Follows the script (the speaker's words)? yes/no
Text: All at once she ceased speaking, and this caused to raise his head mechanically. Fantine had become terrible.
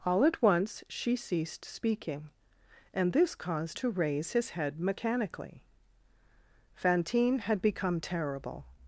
yes